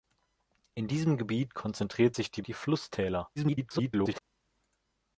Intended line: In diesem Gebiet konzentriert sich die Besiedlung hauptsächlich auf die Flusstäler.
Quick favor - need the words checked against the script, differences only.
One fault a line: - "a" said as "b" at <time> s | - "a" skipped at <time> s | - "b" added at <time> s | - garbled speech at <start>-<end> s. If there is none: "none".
- "Besiedlung hauptsächlich auf" skipped at 2.4 s
- garbled speech at 3.4-4.2 s